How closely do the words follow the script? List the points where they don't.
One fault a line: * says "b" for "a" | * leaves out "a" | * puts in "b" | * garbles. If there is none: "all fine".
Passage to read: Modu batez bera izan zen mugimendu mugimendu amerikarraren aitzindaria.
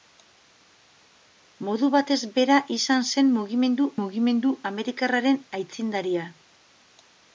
all fine